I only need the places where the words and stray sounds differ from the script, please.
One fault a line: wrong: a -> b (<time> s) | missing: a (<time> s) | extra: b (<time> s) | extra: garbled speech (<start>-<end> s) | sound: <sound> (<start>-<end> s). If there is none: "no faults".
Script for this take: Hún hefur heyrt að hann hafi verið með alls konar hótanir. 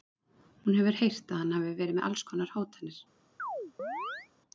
sound: chirp (3.4-4.3 s)